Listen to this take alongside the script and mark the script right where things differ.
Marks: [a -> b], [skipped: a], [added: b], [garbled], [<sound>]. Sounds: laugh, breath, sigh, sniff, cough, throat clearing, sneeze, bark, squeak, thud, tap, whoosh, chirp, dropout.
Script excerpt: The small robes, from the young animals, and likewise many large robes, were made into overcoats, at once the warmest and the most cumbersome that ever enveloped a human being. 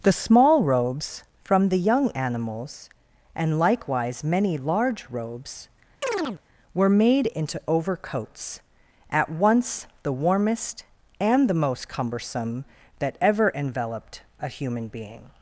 The small robes, from the young animals, and likewise many large robes, [chirp] were made into overcoats, at once the warmest and the most cumbersome that ever enveloped a human being.